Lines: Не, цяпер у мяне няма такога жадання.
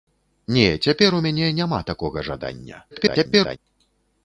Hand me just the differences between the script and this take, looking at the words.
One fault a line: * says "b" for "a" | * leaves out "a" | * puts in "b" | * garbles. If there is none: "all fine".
* garbles